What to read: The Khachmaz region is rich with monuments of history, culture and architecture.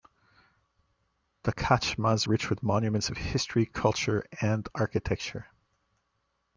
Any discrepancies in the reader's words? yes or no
yes